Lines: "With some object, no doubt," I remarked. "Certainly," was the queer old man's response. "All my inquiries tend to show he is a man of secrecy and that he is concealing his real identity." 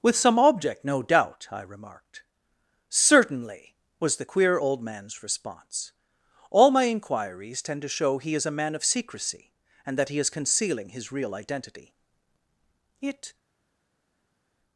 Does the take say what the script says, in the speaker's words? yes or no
no